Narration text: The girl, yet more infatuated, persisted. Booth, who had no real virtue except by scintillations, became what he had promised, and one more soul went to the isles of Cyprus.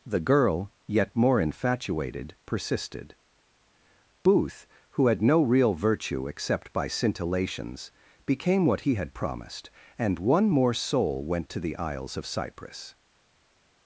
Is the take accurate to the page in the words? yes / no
yes